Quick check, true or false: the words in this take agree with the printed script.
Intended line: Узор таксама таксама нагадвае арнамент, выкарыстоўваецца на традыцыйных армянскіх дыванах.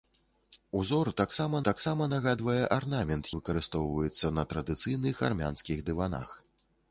true